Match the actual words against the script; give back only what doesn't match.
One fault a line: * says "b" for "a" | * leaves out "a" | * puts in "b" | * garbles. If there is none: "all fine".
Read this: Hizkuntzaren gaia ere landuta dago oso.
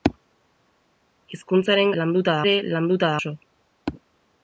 * says "landuta" for "gaia"
* leaves out "dago"